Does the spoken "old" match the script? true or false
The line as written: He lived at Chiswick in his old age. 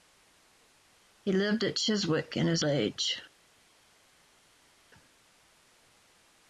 false